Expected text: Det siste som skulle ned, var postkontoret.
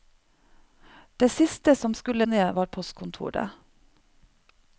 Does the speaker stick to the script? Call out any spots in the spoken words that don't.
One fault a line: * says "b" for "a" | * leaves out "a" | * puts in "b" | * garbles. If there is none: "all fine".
all fine